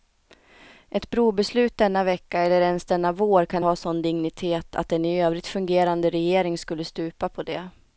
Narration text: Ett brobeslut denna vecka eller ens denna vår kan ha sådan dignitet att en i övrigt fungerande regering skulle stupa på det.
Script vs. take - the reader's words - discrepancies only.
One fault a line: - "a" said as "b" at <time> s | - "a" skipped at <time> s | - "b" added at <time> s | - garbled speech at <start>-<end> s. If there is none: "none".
none